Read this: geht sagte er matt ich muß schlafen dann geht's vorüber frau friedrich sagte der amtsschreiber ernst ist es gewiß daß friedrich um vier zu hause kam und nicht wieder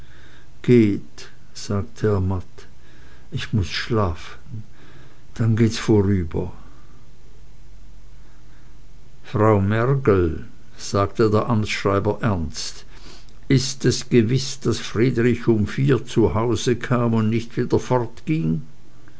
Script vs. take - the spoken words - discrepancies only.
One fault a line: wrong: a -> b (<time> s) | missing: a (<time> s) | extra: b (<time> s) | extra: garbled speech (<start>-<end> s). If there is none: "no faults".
wrong: friedrich -> mergel (9.6 s)